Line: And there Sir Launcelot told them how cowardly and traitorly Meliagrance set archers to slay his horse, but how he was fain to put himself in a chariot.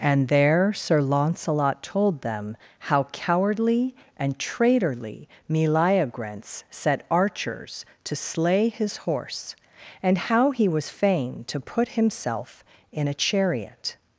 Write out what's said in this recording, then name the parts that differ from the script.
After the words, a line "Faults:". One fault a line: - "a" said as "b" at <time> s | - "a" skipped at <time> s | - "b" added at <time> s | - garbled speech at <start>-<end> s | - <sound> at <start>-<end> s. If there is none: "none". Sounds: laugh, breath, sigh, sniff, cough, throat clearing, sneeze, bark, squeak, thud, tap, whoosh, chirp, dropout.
And there Sir Launcelot told them how cowardly and traitorly Meliagrance set archers to slay his horse, and how he was fain to put himself in a chariot.
Faults:
- "but" said as "and" at 10.0 s